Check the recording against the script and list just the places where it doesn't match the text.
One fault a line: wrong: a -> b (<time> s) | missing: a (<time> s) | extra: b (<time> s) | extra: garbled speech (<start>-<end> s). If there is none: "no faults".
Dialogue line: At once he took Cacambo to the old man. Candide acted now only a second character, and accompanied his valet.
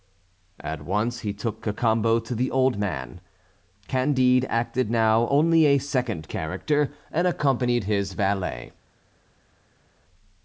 no faults